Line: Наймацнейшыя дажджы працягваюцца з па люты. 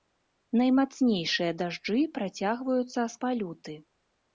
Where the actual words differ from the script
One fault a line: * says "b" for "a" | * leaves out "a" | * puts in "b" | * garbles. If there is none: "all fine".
all fine